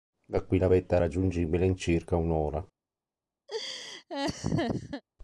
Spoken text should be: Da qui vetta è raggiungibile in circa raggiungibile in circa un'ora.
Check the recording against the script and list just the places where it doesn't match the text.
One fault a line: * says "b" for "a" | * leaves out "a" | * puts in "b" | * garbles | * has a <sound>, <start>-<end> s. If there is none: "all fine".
* puts in "la"
* leaves out "raggiungibile in circa"
* has a laugh, 3.5-5.0 s